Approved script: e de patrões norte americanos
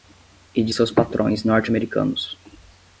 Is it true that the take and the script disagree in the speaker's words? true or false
true